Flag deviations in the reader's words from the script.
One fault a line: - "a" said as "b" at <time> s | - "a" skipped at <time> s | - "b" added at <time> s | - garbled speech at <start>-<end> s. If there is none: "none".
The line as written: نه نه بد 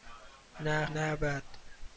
none